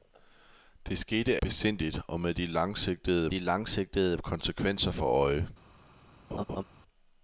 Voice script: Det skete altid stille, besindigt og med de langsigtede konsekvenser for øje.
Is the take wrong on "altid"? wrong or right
wrong